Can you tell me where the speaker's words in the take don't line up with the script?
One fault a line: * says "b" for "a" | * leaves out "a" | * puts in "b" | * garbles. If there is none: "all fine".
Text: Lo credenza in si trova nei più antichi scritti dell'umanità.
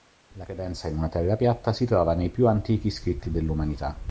* says "La" for "Lo"
* puts in "una Terra piatta"